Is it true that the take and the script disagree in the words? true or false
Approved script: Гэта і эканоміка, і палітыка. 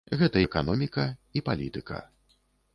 true